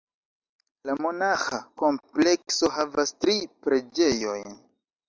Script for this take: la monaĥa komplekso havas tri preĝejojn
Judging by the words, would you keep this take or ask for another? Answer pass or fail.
pass